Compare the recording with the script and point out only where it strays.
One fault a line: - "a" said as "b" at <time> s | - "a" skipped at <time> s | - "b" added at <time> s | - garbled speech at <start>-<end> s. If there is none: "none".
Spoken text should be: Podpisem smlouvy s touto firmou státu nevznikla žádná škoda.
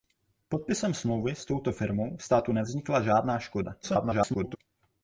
- garbled speech at 3.8-4.6 s